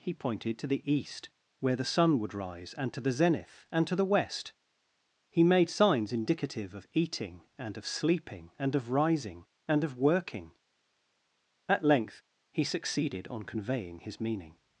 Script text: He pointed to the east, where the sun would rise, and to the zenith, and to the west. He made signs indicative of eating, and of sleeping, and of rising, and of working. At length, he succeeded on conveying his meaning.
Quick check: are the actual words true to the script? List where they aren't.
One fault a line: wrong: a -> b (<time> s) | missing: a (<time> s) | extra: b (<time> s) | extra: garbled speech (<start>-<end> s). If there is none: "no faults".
no faults